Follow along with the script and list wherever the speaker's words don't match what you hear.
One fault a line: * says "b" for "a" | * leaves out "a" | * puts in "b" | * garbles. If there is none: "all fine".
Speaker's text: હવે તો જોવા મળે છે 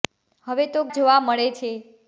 all fine